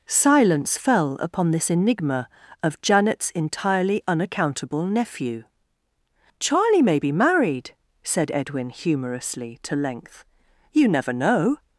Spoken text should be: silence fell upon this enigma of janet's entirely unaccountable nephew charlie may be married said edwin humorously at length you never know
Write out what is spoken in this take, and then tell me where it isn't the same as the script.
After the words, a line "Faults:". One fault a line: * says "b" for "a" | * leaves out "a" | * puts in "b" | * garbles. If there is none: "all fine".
silence fell upon this enigma of janet's entirely unaccountable nephew charlie may be married said edwin humorously to length you never know
Faults:
* says "to" for "at"